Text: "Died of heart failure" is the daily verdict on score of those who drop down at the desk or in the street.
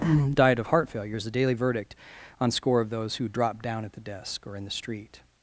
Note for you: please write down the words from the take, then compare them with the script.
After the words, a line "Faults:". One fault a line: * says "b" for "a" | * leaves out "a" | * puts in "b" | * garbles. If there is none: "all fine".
"Died of heart failure" is the daily verdict on score of those who drop down at the desk or in the street.
Faults:
all fine